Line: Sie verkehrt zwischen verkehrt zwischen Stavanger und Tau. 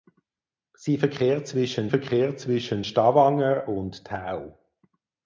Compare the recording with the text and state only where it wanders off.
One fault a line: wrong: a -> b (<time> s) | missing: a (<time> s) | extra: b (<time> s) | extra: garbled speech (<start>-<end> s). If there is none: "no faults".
no faults